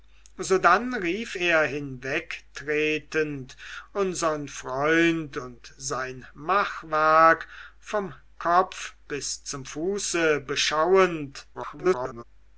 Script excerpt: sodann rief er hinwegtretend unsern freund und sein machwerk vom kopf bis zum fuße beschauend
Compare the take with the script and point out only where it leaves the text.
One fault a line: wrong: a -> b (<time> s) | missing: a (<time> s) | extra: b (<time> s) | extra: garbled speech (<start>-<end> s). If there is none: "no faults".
extra: garbled speech (11.5-12.2 s)